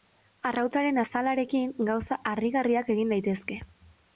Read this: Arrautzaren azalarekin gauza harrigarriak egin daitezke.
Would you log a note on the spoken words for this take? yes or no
no